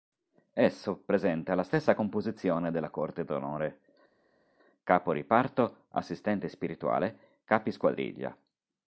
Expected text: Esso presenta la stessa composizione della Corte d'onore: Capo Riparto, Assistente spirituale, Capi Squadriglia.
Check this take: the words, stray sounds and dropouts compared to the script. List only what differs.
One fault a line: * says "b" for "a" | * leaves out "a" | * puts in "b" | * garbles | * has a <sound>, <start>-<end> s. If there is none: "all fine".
all fine